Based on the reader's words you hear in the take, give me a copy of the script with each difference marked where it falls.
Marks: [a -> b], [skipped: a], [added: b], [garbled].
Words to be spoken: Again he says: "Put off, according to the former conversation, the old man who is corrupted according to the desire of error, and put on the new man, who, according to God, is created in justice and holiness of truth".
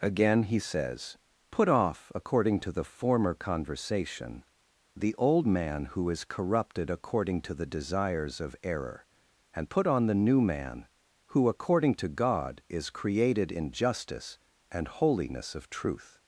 Again he says: "Put off, according to the former conversation, the old man who is corrupted according to the [desire -> desires] of error, and put on the new man, who, according to God, is created in justice and holiness of truth".